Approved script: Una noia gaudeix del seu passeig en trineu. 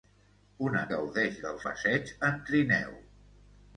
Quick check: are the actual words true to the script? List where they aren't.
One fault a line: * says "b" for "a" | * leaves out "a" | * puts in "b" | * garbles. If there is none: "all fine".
* leaves out "noia"
* leaves out "seu"